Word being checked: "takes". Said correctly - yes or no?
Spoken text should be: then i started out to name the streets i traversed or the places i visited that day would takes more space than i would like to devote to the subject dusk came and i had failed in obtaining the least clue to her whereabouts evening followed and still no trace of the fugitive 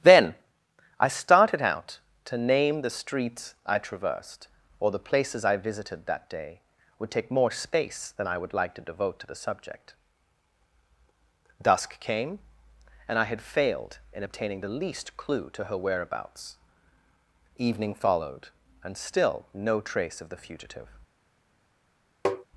no